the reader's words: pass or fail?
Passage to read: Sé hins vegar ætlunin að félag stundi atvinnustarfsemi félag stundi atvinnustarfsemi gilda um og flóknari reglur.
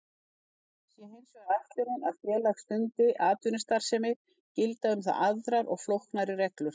fail